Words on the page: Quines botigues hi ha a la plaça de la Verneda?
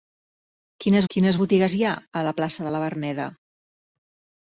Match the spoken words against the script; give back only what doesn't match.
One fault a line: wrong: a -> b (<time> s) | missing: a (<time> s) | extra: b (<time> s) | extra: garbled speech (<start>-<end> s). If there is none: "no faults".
extra: quines (1.2 s)